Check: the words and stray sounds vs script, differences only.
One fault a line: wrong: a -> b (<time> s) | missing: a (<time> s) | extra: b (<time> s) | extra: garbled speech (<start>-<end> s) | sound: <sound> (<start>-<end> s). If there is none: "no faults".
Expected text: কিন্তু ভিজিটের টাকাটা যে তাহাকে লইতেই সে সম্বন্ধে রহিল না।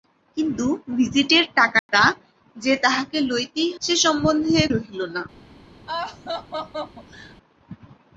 sound: dropout (1.8-1.9 s)
sound: laugh (5.9-7.4 s)